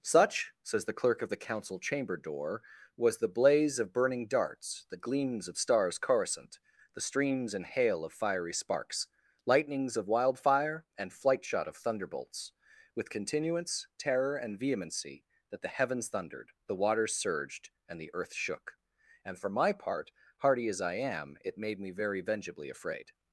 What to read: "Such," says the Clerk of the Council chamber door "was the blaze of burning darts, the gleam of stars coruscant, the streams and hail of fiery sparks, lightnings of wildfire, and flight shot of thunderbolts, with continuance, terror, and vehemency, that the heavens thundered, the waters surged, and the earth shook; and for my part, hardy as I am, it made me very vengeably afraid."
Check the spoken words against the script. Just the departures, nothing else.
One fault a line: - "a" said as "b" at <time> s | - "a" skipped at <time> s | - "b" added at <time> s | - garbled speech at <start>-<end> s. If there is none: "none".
- "gleam" said as "gleams" at 5.0 s